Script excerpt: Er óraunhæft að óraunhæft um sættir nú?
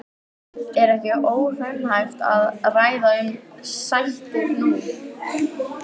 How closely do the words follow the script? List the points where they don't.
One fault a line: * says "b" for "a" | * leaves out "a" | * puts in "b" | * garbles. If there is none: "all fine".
* puts in "ekki"
* says "ræða" for "óraunhæft"